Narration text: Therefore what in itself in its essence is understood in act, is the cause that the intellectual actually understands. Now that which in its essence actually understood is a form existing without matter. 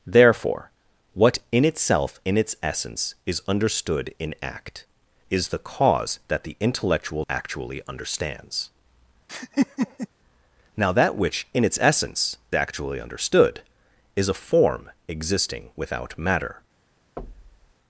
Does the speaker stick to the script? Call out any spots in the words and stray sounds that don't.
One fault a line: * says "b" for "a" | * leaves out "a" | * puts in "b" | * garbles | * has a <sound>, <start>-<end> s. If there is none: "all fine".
* has a laugh, 9.3-10.1 s
* has a thud, 17.2-17.7 s